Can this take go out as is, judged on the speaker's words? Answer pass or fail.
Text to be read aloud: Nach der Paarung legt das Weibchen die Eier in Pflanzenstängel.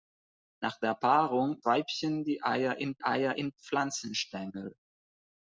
fail